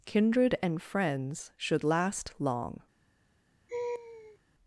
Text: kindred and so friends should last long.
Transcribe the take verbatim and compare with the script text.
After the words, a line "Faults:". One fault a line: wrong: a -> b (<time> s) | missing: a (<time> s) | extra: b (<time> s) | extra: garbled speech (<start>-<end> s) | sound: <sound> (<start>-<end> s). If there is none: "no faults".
kindred and friends should last long.
Faults:
missing: so (0.8 s)
sound: laugh (3.7-4.4 s)